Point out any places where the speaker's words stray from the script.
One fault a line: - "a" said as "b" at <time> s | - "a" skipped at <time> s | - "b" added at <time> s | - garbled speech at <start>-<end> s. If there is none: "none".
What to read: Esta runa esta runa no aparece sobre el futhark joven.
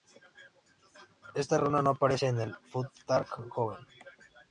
- "esta runa" skipped at 1.8 s
- "sobre" said as "en" at 2.3 s